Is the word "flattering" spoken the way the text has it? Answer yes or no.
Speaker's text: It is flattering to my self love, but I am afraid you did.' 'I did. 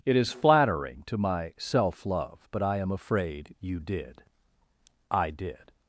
yes